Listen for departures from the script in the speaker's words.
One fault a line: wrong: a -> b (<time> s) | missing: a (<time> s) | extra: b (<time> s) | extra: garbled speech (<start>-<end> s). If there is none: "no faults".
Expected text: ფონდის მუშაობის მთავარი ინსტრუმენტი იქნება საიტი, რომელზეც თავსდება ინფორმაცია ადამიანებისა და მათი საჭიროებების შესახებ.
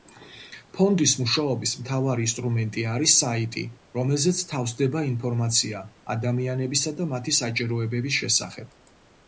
wrong: იქნება -> არის (2.9 s)